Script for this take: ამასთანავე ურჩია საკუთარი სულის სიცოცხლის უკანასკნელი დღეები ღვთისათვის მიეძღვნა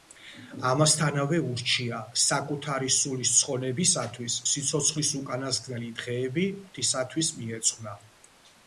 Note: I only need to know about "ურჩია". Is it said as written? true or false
true